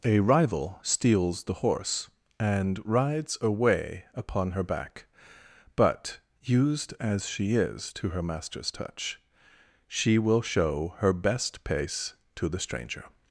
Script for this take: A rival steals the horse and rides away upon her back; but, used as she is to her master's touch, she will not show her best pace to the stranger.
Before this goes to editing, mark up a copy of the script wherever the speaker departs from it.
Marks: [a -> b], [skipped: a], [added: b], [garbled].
A rival steals the horse and rides away upon her back; but, used as she is to her master's touch, she will [skipped: not] show her best pace to the stranger.